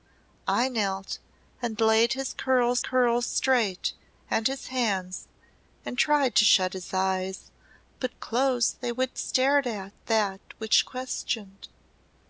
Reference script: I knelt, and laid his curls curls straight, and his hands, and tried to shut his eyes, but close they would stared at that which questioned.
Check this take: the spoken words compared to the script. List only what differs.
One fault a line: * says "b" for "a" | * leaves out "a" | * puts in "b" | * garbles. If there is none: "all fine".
all fine